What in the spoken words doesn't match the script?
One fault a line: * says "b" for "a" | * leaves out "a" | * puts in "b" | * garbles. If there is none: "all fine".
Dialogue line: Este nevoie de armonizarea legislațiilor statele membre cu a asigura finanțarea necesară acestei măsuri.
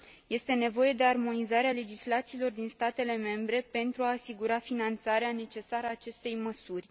* puts in "din"
* says "pentru" for "cu"